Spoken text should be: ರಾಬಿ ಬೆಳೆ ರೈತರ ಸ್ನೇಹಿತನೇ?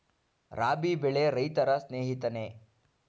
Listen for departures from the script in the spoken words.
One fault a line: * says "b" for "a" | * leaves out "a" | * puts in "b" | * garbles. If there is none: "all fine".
all fine